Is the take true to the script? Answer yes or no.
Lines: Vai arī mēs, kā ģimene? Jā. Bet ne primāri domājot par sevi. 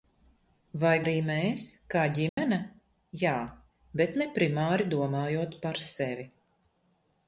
yes